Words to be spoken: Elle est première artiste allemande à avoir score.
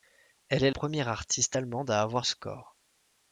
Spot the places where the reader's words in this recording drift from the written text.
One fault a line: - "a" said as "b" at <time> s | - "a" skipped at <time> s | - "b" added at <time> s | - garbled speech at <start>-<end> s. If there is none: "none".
none